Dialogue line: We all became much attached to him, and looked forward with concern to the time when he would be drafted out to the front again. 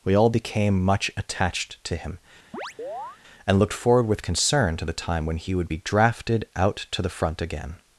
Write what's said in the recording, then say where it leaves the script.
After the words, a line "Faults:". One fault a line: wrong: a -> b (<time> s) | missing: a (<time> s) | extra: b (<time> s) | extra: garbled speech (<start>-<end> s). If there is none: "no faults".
We all became much attached to him, and looked forward with concern to the time when he would be drafted out to the front again.
Faults:
no faults